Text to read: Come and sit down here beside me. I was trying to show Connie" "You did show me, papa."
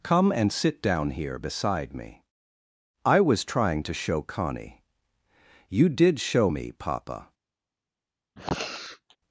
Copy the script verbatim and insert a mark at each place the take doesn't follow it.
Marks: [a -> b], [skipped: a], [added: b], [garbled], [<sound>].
Come and sit down here beside me. I was trying to show Connie" "You did show me, papa." [sniff]